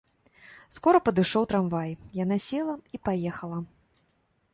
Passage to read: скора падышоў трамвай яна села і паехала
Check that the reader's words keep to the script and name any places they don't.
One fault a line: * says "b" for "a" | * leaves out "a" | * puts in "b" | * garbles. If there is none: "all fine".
all fine